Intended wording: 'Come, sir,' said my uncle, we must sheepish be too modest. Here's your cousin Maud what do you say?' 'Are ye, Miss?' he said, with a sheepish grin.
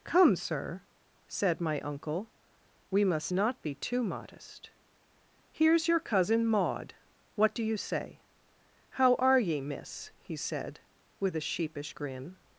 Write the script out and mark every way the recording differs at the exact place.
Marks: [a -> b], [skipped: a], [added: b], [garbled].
'Come, sir,' said my uncle, we must [sheepish -> not] be too modest. Here's your cousin Maud what do you say?' [added: How] 'Are ye, Miss?' he said, with a sheepish grin.